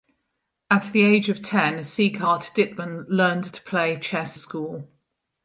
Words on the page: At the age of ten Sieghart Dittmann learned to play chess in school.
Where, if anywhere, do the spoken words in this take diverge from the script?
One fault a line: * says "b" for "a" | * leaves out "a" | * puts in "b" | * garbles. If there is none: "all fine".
* leaves out "in"